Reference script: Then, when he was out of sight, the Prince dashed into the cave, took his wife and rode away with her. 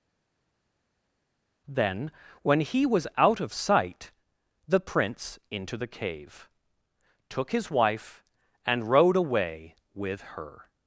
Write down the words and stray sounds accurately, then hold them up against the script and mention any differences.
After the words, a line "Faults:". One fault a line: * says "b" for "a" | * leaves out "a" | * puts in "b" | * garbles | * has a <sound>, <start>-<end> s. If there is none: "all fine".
Then, when he was out of sight, the Prince into the cave, took his wife and rode away with her.
Faults:
* leaves out "dashed"